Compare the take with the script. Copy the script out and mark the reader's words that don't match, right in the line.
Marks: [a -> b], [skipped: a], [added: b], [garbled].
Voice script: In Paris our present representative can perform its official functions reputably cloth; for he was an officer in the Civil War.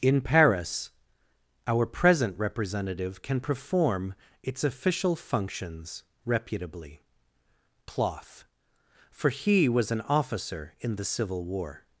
In Paris our present representative can perform its official functions reputably cloth; for he was an officer in the Civil War.